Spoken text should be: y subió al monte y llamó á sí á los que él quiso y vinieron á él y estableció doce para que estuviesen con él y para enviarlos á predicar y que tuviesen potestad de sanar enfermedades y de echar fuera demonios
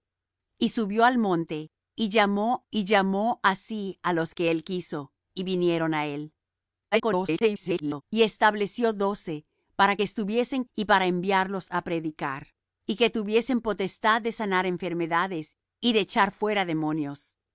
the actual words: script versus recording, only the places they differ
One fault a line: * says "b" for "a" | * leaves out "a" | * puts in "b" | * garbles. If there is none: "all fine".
* puts in "y llamó"
* garbles
* leaves out "con él"